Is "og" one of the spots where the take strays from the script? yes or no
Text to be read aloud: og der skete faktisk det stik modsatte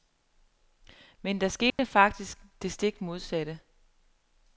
yes